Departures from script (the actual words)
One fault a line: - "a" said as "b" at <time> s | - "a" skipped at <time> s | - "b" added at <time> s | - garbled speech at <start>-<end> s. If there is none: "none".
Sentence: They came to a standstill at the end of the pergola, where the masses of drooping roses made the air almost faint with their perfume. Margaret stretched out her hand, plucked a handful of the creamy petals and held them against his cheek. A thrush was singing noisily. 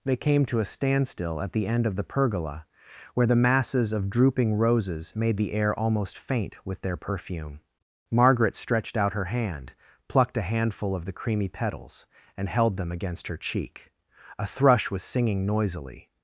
- "his" said as "her" at 13.3 s